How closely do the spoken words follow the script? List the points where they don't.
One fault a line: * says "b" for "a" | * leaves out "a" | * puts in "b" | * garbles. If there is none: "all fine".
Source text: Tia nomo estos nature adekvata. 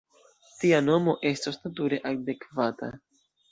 all fine